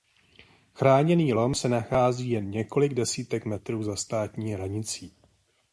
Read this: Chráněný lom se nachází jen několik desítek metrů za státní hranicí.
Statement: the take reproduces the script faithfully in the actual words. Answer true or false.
true